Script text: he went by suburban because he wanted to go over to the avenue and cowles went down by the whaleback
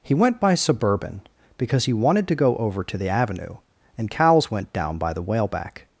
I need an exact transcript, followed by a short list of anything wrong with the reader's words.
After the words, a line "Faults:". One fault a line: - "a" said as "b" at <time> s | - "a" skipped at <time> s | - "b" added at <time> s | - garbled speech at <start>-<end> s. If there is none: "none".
he went by suburban because he wanted to go over to the avenue and cowles went down by the whaleback
Faults:
none